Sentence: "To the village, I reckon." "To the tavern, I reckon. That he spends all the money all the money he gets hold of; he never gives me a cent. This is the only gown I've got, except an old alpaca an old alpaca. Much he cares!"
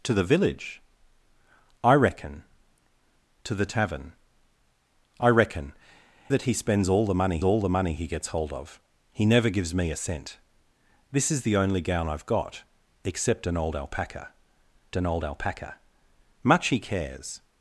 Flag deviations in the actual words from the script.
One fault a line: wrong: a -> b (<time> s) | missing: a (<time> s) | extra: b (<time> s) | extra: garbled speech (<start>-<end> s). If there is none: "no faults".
no faults